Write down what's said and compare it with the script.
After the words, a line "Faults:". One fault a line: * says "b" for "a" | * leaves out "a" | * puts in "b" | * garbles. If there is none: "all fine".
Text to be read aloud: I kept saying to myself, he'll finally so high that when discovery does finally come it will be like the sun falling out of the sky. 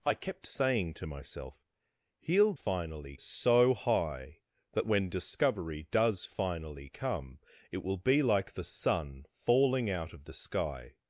I kept saying to myself, he'll finally so high that when discovery does finally come it will be like the sun falling out of the sky.
Faults:
all fine